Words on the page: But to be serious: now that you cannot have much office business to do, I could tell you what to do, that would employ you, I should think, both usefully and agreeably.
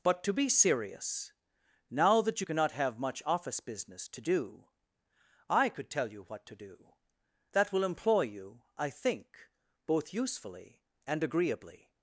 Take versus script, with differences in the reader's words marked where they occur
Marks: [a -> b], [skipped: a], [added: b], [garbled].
But to be serious: now that you cannot have much office business to do, I could tell you what to do, that [would -> will] employ you, I [skipped: should] think, both usefully and agreeably.